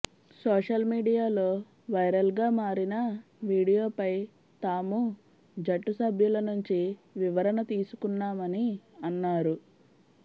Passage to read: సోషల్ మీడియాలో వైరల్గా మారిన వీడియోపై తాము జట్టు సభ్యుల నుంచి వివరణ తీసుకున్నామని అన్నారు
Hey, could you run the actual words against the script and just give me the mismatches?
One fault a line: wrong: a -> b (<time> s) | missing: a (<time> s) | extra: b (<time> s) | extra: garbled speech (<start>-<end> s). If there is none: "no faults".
no faults